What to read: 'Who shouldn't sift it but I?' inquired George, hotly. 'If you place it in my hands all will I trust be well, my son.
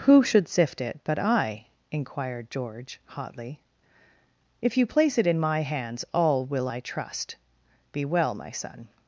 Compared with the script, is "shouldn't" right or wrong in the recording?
wrong